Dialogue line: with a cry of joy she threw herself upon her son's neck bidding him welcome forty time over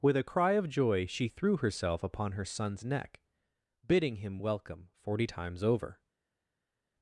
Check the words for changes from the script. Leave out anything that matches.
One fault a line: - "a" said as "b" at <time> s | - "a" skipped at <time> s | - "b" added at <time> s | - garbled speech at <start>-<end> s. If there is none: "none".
- "time" said as "times" at 5.2 s